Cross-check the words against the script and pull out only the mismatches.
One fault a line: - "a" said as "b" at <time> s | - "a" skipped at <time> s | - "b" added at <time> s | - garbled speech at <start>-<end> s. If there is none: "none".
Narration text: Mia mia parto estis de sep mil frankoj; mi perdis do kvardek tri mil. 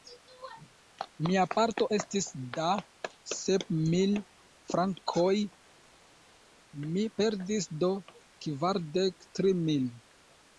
- "mia" skipped at 1.4 s
- "de" said as "da" at 2.6 s